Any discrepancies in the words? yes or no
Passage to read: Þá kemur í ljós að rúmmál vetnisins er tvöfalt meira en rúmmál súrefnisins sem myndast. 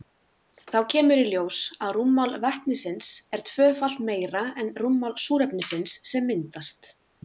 no